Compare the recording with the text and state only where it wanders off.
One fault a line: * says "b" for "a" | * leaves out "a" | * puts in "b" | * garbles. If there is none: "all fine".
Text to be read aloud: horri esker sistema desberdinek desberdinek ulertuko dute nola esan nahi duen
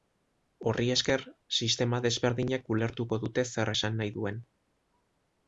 * leaves out "desberdinek"
* says "zer" for "nola"